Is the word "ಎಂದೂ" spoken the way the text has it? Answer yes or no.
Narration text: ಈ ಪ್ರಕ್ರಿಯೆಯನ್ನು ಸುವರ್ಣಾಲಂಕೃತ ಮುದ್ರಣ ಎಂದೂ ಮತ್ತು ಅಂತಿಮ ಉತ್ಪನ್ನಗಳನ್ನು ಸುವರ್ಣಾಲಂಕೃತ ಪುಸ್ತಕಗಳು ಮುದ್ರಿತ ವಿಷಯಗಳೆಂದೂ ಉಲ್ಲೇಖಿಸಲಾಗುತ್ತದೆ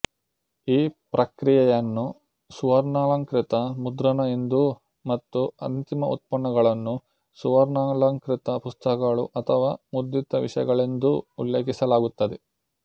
yes